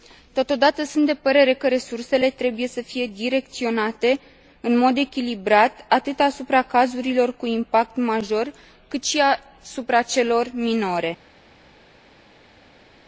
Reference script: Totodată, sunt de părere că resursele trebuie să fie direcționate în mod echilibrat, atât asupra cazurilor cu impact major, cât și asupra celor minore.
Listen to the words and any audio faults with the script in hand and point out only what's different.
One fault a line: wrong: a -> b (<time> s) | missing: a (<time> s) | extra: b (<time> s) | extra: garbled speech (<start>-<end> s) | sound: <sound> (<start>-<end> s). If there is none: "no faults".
no faults